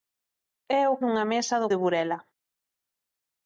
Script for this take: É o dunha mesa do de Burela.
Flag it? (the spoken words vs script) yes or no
no